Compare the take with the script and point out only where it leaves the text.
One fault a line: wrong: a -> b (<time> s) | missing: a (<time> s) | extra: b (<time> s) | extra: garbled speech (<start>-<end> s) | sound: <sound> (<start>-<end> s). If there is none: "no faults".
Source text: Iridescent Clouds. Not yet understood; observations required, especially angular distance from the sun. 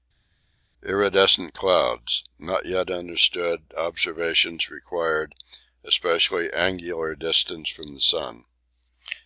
no faults